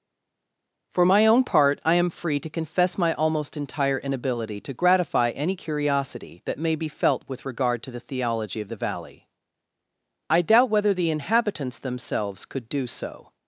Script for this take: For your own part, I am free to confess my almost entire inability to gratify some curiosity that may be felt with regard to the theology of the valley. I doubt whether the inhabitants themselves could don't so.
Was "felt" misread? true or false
false